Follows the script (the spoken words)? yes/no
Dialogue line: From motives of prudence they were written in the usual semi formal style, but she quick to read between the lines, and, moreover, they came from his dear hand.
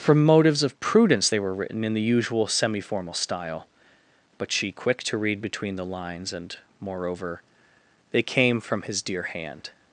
yes